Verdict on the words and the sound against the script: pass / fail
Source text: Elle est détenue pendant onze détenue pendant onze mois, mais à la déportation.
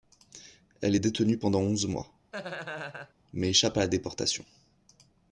fail